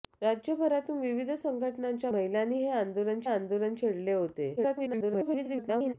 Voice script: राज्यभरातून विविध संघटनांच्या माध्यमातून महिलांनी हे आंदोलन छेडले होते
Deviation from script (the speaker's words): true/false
true